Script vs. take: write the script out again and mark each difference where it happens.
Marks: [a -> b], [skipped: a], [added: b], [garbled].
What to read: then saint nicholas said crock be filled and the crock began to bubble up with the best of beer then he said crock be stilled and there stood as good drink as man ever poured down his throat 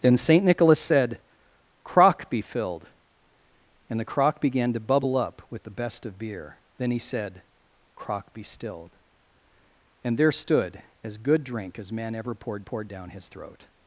then saint nicholas said crock be filled and the crock began to bubble up with the best of beer then he said crock be stilled and there stood as good drink as man ever poured [added: poured] down his throat